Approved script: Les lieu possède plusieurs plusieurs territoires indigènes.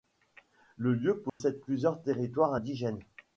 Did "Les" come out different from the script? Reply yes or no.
yes